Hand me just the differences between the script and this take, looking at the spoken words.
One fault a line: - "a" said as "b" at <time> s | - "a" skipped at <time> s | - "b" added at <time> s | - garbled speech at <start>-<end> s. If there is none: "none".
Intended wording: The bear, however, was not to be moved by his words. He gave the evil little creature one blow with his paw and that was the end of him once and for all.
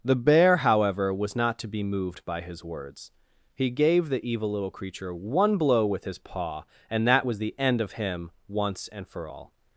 none